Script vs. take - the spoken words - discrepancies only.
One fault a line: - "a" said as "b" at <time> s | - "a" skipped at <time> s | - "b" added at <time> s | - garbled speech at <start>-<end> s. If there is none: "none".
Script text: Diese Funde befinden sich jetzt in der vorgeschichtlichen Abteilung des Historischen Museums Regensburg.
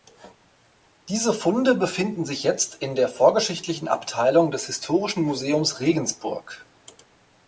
none